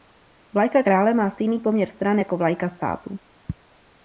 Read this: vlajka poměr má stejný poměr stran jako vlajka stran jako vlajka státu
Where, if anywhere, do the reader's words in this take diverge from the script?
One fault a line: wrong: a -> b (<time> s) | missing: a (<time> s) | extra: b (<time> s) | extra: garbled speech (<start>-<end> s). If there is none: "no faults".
wrong: poměr -> krále (0.8 s)
missing: stran jako vlajka (2.7 s)